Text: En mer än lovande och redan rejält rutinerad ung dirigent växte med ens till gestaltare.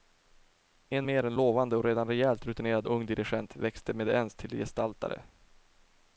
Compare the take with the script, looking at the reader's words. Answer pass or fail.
pass